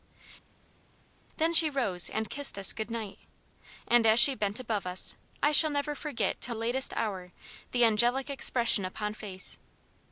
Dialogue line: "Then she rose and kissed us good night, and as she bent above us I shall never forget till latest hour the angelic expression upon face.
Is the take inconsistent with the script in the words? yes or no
no